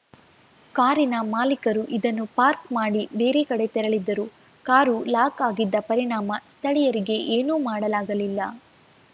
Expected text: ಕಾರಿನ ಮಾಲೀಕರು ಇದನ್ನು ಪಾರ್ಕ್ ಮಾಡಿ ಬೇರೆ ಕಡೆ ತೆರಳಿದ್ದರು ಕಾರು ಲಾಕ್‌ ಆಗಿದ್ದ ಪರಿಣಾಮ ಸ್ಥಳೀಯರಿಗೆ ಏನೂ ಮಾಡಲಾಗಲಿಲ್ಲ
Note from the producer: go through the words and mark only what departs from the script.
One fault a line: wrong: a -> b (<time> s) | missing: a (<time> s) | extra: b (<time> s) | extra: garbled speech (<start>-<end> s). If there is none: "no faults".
no faults